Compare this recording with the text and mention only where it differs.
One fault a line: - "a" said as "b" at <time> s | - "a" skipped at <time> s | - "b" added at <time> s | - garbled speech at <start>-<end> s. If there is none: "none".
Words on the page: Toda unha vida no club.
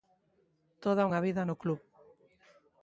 none